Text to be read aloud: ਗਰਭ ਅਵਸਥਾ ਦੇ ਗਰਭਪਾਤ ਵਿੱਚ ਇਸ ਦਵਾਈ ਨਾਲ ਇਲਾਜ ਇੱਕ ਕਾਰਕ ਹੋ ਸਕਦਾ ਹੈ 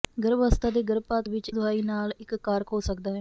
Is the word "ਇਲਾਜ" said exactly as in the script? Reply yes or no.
no